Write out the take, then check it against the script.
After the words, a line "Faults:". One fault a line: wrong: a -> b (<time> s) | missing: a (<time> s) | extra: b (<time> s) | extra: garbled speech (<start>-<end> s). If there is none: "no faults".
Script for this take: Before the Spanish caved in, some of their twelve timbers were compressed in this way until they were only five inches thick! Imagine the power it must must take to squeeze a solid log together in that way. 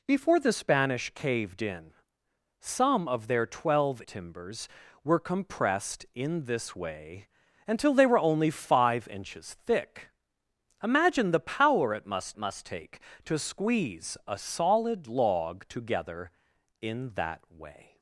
Before the Spanish caved in, some of their twelve timbers were compressed in this way until they were only five inches thick! Imagine the power it must must take to squeeze a solid log together in that way.
Faults:
no faults